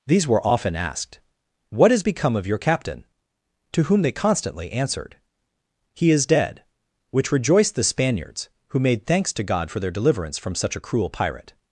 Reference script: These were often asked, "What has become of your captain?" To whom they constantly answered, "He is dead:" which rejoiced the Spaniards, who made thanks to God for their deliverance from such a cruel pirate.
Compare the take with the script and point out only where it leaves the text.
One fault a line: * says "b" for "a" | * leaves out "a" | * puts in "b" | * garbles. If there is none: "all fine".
all fine